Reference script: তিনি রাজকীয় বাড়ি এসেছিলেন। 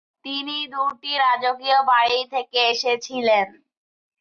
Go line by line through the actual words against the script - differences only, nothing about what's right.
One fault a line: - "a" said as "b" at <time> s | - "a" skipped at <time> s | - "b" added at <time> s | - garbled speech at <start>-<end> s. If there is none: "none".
- "দুটি" added at 0.7 s
- "থেকে" added at 2.3 s